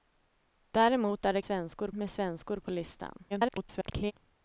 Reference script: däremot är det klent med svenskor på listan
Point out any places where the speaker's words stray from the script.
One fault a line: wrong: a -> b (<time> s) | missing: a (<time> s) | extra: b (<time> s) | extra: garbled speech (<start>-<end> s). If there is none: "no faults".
wrong: klent -> svenskor (1.4 s)
extra: garbled speech (3.3-4.1 s)